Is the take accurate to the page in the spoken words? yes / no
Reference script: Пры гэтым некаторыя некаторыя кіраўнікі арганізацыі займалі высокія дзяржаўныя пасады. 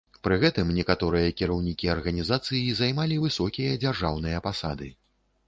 no